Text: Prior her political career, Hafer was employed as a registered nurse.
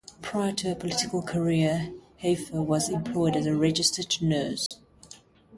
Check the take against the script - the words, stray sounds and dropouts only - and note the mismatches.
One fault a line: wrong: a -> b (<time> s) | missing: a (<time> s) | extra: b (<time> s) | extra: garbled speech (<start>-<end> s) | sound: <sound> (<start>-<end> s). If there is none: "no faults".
extra: to (0.5 s)
sound: dropout (4.7-4.7 s)